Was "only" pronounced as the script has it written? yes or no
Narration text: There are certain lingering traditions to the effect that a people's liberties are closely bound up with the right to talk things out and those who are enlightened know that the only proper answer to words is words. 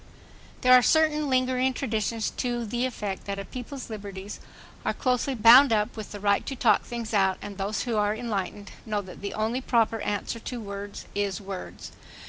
yes